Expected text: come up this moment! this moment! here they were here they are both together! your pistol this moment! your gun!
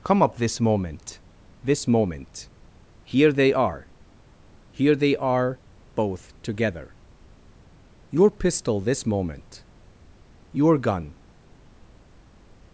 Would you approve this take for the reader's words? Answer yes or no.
no